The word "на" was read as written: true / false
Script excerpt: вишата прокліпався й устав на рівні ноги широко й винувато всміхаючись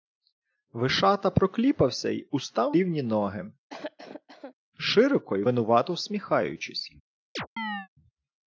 false